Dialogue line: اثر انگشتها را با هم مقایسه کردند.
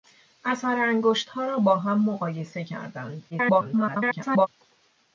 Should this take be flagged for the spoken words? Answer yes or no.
yes